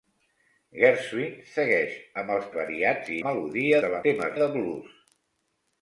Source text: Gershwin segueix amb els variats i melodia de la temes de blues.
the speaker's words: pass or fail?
pass